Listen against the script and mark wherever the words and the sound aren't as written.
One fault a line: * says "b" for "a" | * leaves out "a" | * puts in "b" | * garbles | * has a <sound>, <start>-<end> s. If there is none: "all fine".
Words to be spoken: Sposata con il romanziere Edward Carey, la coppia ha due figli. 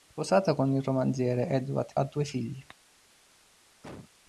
* leaves out "Carey la coppia"
* has a cough, 3.8-4.1 s